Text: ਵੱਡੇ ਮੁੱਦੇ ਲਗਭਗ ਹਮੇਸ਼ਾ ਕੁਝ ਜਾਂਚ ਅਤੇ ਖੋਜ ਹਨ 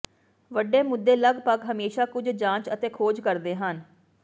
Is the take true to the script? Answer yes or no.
no